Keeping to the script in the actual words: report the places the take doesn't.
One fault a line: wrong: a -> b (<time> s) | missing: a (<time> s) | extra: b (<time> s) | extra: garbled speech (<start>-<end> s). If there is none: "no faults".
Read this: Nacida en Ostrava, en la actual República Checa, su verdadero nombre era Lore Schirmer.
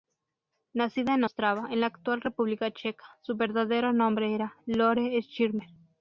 no faults